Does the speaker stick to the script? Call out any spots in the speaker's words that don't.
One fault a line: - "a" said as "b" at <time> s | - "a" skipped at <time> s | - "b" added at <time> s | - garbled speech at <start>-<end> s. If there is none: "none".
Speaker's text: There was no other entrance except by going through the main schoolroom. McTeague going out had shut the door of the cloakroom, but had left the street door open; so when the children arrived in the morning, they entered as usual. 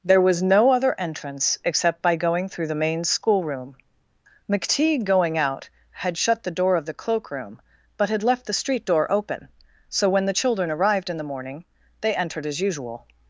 none